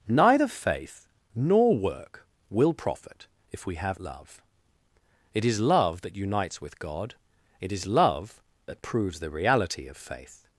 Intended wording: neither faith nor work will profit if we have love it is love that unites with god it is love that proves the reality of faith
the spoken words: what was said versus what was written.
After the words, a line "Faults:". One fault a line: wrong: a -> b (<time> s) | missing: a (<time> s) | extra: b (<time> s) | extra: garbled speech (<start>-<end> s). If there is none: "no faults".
neither faith nor work will profit if we have love it is love that unites with god it is love that proves the reality of faith
Faults:
no faults